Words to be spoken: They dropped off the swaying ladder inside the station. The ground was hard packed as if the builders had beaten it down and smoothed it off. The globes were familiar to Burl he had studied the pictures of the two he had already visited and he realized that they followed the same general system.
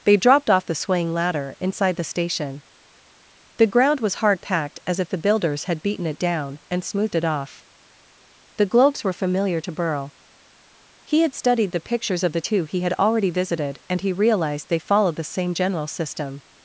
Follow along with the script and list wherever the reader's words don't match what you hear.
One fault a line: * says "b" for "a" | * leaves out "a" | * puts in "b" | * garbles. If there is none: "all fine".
* leaves out "that"